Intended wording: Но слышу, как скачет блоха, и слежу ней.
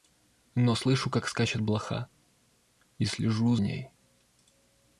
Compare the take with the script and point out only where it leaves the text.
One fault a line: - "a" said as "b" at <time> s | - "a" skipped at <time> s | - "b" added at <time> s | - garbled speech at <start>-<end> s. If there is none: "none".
none